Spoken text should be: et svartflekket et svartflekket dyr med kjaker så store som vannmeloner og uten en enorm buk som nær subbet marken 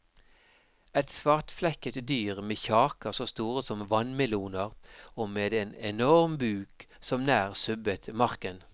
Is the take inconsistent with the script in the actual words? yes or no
yes